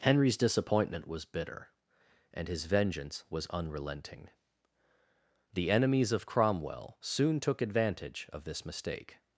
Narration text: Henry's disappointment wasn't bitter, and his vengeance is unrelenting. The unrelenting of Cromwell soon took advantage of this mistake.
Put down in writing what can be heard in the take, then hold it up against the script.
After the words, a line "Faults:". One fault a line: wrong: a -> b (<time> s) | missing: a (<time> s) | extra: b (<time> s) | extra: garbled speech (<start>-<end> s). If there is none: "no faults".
Henry's disappointment was bitter, and his vengeance was unrelenting. The enemies of Cromwell soon took advantage of this mistake.
Faults:
wrong: wasn't -> was (1.1 s)
wrong: is -> was (3.3 s)
wrong: unrelenting -> enemies (5.7 s)